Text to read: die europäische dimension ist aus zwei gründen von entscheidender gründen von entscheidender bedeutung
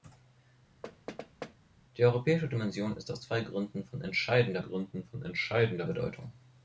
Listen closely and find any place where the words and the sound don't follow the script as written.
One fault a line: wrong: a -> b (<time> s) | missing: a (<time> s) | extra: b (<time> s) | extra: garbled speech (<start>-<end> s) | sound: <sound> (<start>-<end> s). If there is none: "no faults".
sound: thud (0.8-1.6 s)